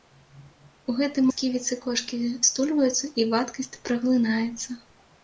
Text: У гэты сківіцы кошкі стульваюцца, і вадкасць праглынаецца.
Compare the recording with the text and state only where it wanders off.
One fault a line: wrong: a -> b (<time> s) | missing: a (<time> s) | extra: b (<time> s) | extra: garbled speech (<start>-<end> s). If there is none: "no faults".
no faults